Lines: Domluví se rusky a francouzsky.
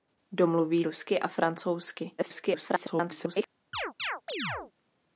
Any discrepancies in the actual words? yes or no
yes